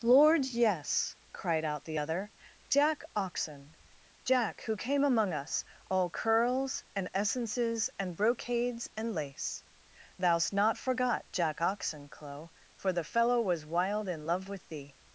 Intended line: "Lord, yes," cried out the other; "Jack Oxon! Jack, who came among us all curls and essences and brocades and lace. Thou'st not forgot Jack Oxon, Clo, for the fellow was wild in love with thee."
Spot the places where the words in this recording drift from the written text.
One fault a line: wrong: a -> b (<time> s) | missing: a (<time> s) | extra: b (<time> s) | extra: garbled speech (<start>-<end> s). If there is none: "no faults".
no faults